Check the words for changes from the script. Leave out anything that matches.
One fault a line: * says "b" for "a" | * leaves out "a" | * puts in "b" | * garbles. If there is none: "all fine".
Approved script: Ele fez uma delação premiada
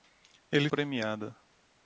* leaves out "fez uma delação"